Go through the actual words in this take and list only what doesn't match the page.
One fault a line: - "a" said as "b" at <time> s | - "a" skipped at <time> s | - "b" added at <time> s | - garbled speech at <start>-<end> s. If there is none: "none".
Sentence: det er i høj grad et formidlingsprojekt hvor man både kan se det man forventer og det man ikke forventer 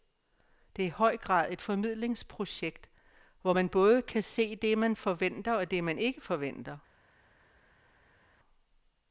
none